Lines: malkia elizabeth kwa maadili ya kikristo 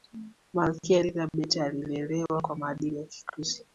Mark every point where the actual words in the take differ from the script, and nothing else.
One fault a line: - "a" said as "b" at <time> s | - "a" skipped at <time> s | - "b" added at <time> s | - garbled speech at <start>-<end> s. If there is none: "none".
- "alilelewa" added at 1.6 s